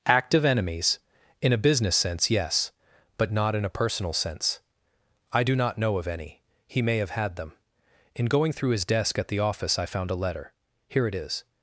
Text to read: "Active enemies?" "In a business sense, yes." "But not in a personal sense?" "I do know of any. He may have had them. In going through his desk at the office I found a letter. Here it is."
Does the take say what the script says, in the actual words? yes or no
no